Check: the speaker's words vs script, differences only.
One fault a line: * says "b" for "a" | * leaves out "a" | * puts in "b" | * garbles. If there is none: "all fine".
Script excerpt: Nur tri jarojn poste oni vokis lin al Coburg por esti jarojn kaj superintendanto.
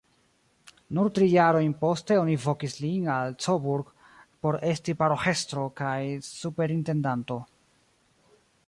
* says "paroĥestro" for "jarojn"